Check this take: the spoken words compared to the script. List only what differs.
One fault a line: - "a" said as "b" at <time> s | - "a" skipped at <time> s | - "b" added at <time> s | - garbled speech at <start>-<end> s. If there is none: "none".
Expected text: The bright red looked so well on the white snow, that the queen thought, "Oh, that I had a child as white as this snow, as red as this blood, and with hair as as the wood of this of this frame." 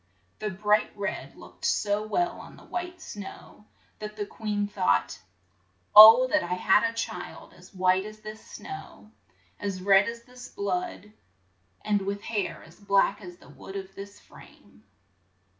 - "black" added at 12.8 s
- "of this" skipped at 14.2 s